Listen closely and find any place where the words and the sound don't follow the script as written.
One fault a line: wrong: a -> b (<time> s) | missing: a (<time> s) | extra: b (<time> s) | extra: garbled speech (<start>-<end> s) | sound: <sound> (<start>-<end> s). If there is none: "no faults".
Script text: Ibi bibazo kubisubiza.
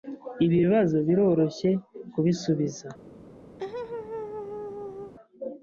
extra: biroroshye (1.1 s)
sound: laugh (3.6-5.1 s)